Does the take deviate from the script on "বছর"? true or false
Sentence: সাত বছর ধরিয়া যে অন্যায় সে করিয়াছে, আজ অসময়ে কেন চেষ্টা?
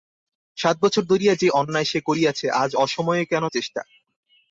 false